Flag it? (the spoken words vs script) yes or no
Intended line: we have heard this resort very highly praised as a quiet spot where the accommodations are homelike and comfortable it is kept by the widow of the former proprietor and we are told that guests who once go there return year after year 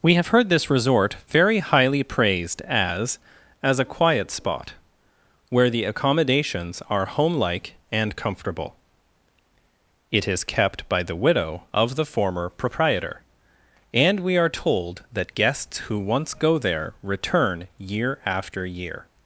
yes